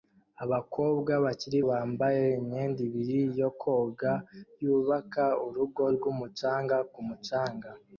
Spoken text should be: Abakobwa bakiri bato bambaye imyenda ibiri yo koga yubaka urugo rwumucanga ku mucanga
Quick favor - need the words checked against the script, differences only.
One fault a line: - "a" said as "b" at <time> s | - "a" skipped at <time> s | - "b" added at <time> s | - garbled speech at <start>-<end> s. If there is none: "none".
- "bato" skipped at 1.6 s